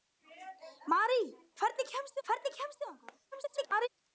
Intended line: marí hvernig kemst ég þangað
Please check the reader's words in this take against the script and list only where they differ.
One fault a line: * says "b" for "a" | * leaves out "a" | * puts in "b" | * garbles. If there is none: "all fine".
* puts in "hvernig kemst"
* garbles